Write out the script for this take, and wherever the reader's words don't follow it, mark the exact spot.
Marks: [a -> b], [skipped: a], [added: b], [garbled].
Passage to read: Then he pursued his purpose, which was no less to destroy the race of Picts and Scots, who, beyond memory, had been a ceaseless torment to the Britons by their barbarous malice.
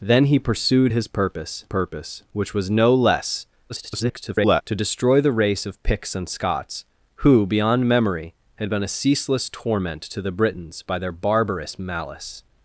Then he pursued his purpose, [added: purpose] which was no less [garbled] to destroy the race of Picts and Scots, who, beyond memory, had been a ceaseless torment to the Britons by their barbarous malice.